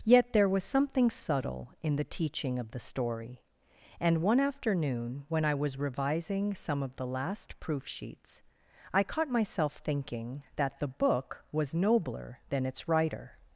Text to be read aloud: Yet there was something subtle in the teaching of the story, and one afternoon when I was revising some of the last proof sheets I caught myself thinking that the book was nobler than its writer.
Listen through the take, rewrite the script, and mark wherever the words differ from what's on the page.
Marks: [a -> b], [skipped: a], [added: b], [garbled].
Yet there was something subtle in the teaching of the story, and one afternoon when I was revising some of the last proof sheets I caught myself thinking that the book was nobler than its writer.